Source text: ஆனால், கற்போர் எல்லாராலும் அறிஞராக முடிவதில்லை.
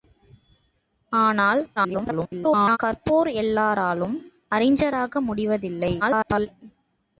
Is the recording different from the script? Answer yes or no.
yes